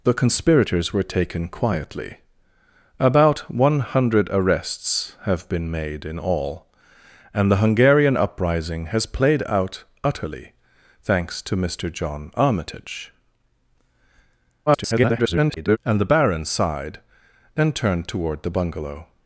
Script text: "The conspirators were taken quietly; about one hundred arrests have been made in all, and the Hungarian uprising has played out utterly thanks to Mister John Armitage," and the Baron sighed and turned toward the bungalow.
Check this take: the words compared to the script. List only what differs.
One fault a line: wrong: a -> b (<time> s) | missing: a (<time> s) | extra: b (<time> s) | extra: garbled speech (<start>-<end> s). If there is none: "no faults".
extra: garbled speech (14.7-15.8 s)